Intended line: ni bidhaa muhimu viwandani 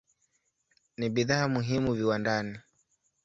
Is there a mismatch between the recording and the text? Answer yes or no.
no